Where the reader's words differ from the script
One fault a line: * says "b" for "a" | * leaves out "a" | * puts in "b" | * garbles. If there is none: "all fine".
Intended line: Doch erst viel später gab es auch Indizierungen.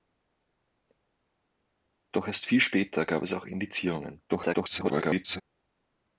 * garbles